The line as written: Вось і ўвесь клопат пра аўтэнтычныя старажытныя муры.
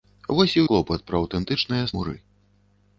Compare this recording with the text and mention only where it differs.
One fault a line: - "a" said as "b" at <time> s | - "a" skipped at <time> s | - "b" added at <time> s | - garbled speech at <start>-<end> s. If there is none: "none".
- "ўвесь" skipped at 0.6 s
- "старажытныя" skipped at 1.9 s